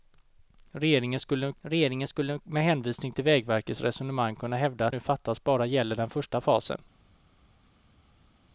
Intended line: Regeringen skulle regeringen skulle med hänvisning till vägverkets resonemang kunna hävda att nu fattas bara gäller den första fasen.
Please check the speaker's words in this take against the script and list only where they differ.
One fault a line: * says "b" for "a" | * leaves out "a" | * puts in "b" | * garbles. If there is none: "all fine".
all fine